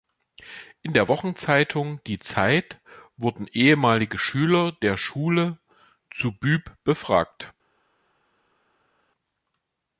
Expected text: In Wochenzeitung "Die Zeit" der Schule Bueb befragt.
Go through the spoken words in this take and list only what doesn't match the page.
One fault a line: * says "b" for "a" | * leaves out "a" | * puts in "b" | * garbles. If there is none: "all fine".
* puts in "der"
* puts in "wurden ehemalige Schüler"
* puts in "zu"